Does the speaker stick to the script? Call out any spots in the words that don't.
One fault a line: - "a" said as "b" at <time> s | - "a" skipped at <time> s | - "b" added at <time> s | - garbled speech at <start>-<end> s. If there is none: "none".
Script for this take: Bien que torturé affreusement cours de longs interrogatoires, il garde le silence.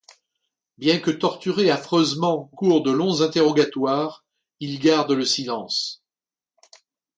none